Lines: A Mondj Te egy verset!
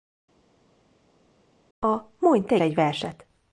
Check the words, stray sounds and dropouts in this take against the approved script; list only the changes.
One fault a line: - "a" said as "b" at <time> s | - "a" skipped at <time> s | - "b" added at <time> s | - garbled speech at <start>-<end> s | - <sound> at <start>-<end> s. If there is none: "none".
none